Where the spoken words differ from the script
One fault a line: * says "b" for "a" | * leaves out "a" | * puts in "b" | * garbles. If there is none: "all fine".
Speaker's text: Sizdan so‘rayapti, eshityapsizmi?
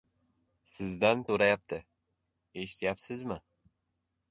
all fine